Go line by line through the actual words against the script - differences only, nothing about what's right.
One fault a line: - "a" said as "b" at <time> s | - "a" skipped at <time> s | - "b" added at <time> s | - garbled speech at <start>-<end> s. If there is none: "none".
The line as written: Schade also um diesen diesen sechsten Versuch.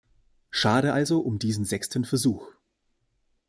- "diesen" skipped at 1.6 s